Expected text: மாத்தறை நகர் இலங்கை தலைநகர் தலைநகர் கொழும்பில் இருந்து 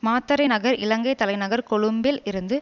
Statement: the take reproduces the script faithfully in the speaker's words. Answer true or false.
false